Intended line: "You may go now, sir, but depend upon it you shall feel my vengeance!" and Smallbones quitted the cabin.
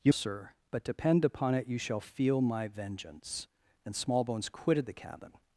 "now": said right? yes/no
no